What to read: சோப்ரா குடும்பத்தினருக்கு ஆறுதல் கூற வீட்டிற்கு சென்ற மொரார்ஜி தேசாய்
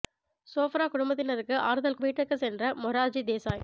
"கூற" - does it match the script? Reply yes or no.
no